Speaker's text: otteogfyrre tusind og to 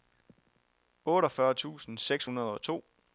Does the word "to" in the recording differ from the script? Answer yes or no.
no